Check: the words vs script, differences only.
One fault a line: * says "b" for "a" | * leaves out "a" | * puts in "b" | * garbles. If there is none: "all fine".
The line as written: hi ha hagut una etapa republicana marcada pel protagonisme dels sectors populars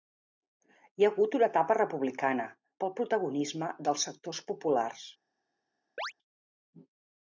* leaves out "marcada"